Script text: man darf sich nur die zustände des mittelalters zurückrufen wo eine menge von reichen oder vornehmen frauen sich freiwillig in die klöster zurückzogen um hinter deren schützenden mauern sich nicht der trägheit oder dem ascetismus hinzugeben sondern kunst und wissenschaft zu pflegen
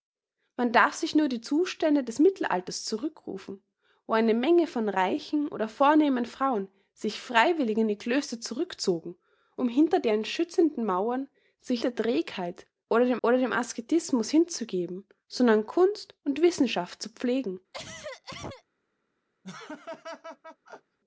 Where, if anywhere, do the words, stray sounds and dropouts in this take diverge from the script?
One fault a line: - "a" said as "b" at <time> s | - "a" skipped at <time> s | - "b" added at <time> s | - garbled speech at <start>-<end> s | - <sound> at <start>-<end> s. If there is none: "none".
- "nicht" skipped at 11.8 s
- "oder dem" added at 13.2 s
- cough at 17.7-18.6 s
- laugh at 19.4-21.0 s